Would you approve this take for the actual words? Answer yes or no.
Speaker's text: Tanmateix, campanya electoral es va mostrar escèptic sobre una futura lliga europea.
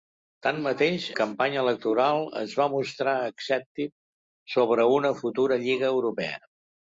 yes